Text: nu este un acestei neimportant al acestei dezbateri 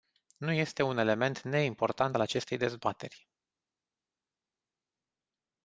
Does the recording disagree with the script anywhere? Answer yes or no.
yes